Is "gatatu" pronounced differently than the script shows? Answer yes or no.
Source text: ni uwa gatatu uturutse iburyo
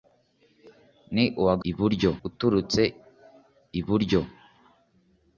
yes